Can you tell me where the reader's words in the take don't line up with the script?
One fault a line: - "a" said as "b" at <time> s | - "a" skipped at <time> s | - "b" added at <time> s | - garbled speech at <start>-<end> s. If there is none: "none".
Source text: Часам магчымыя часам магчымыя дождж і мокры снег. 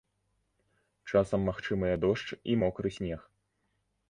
- "часам магчымыя" skipped at 2.0 s